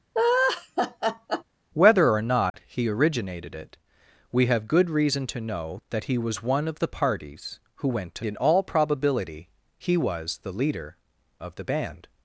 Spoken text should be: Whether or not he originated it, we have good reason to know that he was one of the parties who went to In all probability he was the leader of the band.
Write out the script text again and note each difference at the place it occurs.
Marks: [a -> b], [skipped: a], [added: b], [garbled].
Whether or not he originated it, we have good reason to know that he was one of the parties who went to In all probability he was the leader of the band.